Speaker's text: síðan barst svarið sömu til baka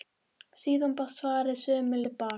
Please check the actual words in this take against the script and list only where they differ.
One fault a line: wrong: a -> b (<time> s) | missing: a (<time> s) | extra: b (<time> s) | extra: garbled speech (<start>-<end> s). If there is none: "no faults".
no faults